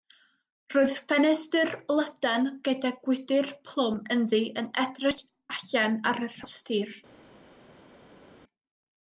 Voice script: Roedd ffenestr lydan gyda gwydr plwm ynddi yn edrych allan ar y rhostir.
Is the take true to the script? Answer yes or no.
yes